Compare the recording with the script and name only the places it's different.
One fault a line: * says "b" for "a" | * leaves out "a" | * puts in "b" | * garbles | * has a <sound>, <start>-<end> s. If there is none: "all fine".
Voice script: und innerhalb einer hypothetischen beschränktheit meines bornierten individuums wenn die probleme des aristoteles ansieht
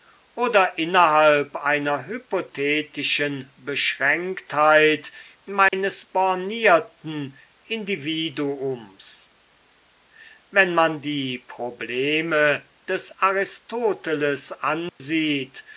* says "oder" for "und"
* has a dropout, 5.7-5.7 s
* puts in "man"
* has a dropout, 14.9-15.0 s